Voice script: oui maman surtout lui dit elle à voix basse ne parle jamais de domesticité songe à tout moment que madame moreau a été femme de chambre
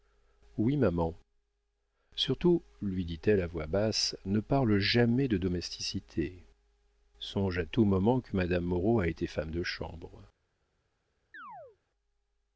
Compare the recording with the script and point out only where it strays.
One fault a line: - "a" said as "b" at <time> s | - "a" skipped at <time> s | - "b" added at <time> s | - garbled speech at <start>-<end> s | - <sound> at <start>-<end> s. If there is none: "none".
- chirp at 11.3-11.8 s